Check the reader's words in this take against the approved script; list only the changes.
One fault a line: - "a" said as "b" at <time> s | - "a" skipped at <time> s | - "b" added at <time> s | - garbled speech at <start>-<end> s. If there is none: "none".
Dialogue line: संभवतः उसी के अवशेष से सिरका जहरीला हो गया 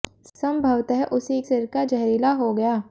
- "के अवशेष से" skipped at 1.4 s